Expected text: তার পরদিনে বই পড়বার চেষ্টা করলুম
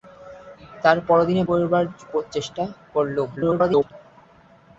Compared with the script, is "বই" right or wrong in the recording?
wrong